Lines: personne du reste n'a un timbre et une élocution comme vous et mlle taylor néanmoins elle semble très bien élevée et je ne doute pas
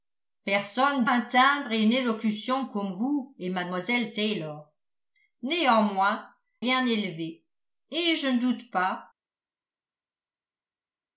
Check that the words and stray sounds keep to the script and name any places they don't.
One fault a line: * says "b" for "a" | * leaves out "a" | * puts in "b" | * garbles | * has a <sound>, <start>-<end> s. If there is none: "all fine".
* leaves out "du reste n'a"
* leaves out "elle semble très"